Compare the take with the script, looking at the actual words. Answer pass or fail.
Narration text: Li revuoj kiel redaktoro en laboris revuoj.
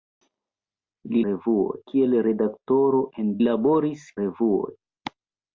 pass